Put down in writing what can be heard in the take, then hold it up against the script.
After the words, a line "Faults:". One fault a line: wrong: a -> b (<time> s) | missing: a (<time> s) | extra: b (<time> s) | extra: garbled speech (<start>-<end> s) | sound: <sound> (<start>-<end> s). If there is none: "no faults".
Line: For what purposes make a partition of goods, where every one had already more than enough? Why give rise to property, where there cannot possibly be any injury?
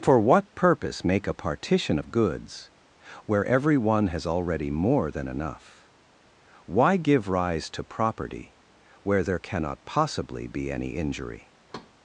For what purpose make a partition of goods, where every one has already more than enough? Why give rise to property, where there cannot possibly be any injury?
Faults:
wrong: purposes -> purpose (0.6 s)
wrong: had -> has (4.1 s)
sound: thud (11.7-11.9 s)